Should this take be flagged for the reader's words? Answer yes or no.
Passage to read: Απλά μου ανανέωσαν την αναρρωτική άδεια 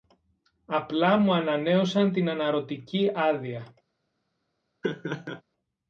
no